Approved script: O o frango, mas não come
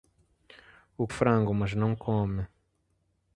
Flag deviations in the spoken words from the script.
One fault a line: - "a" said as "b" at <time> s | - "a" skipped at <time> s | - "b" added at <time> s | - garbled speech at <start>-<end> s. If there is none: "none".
none